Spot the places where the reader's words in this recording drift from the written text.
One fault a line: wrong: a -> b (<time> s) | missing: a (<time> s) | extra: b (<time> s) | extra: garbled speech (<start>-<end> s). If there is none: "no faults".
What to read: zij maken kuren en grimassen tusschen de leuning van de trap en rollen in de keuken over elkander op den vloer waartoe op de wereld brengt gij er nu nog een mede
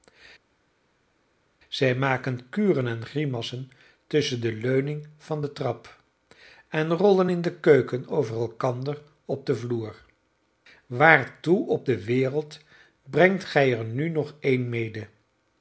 no faults